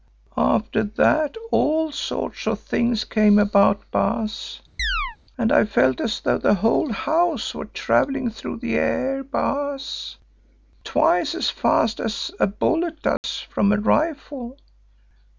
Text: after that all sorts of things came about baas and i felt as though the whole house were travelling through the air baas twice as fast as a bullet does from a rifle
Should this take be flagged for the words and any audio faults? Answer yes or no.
yes